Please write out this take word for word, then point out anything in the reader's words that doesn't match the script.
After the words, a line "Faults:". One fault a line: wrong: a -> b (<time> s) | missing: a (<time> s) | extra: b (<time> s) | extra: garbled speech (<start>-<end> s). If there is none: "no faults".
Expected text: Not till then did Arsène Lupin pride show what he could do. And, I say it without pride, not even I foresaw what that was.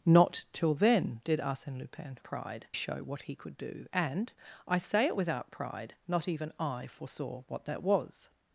Not till then did Arsène Lupin pride show what he could do. And, I say it without pride, not even I foresaw what that was.
Faults:
no faults